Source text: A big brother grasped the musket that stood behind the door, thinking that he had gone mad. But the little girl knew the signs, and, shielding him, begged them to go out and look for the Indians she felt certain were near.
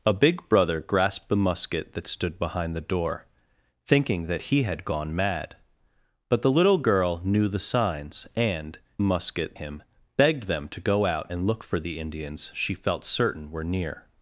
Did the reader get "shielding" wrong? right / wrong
wrong